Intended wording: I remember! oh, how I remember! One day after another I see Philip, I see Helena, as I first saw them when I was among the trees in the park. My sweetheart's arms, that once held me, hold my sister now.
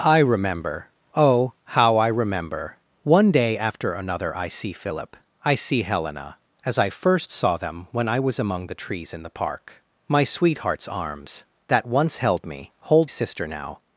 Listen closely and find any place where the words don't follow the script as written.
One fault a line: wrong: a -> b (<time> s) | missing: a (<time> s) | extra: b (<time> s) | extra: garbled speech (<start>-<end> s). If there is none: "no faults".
missing: my (13.1 s)